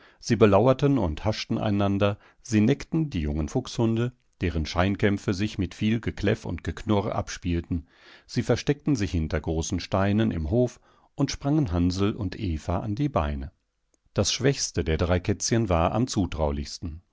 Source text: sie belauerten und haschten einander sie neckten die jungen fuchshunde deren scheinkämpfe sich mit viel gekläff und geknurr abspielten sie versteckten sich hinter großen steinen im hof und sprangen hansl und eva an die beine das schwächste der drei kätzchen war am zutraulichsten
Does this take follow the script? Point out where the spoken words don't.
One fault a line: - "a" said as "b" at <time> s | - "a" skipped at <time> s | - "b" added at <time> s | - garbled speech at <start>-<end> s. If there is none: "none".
none